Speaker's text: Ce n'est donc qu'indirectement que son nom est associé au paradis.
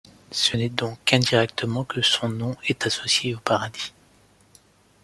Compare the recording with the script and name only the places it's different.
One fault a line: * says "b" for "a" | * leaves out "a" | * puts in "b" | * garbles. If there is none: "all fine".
all fine